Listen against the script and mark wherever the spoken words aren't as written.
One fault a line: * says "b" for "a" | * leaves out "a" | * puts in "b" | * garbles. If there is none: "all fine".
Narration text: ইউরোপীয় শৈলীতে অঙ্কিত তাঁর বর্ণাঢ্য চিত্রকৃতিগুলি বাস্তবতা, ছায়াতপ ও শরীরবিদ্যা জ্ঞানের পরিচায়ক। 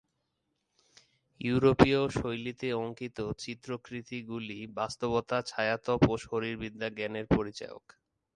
* leaves out "তাঁর বর্ণাঢ্য"